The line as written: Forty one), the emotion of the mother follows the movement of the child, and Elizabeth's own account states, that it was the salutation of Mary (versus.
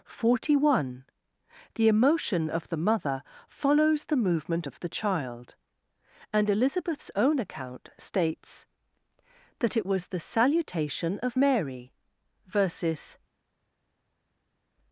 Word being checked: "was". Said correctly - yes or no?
yes